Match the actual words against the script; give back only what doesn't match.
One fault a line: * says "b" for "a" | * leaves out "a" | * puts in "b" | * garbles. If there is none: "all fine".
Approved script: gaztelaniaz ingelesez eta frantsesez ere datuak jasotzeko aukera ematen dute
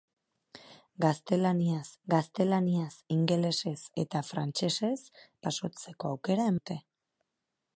* puts in "gaztelaniaz"
* leaves out "ere datuak"
* leaves out "ematen"